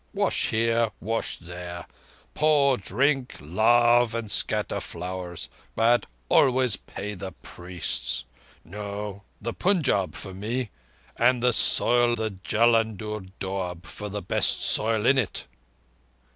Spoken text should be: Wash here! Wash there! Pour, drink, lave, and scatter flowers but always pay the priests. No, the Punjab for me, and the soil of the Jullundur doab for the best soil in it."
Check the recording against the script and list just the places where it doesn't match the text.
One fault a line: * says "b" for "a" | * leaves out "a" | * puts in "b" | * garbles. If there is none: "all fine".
* leaves out "of"